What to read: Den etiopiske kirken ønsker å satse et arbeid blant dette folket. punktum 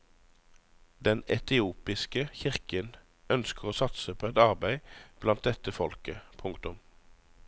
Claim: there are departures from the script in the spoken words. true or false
true